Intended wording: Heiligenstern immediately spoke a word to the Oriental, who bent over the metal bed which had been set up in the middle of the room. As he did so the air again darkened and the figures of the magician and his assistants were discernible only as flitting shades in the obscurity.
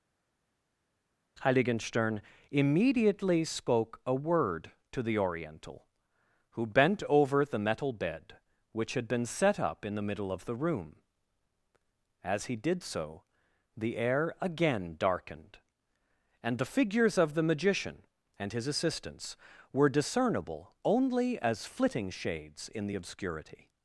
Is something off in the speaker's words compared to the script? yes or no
no